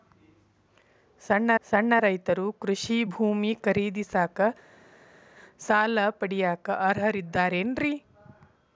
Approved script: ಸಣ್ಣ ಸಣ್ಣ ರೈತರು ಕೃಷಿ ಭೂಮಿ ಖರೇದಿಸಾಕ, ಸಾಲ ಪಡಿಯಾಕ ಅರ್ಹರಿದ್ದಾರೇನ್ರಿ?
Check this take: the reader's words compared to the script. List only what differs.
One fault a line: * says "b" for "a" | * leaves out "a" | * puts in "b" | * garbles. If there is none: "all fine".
all fine